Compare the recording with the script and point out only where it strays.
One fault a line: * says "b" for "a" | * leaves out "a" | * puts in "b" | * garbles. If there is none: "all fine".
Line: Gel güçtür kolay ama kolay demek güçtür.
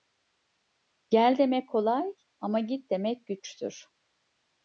* says "demek" for "güçtür"
* says "git" for "kolay"